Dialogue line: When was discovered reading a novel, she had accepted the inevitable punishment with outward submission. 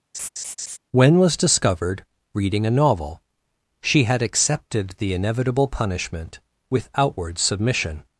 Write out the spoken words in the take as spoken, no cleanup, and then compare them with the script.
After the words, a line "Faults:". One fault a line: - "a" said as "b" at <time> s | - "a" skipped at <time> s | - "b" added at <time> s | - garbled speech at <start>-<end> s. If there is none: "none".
When was discovered reading a novel, she had accepted the inevitable punishment with outward submission.
Faults:
none